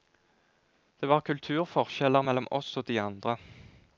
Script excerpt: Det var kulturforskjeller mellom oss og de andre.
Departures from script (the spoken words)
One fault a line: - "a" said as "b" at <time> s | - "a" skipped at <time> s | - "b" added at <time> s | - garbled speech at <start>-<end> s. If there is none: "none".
none